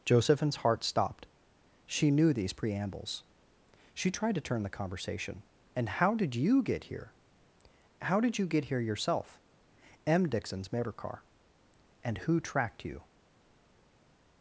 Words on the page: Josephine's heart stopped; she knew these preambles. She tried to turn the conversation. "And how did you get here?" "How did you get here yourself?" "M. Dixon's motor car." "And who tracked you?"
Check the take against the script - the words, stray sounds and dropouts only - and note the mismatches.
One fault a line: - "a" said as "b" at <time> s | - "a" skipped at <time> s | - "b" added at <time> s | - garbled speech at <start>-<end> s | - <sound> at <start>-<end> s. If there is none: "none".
none